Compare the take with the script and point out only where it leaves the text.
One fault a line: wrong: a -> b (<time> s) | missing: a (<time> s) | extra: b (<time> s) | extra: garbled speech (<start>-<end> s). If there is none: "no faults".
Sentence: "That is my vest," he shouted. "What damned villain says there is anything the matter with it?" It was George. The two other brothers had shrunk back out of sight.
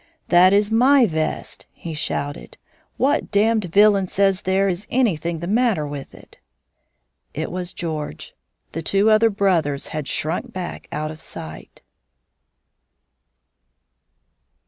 no faults